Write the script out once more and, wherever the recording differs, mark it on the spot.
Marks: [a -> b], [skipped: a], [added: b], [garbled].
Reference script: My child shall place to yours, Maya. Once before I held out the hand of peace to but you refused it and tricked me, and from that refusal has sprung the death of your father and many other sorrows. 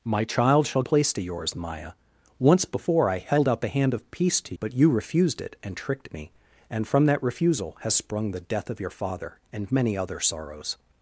My child shall place to yours, Maya. Once before I held out the hand of peace to but you refused it and tricked me, and from that refusal has sprung the death of your father and many other sorrows.